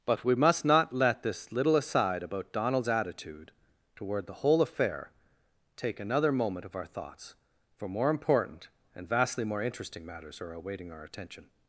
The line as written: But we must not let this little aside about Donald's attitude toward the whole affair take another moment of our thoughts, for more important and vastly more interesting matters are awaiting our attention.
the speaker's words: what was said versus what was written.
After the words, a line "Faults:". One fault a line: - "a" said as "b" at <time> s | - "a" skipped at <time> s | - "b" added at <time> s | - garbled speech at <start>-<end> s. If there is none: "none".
But we must not let this little aside about Donald's attitude toward the whole affair take another moment of our thoughts, for more important and vastly more interesting matters are awaiting our attention.
Faults:
none